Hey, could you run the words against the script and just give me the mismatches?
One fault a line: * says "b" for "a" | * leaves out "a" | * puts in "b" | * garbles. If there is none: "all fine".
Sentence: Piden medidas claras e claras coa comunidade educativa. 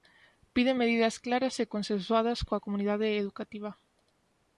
* says "consensuadas" for "claras"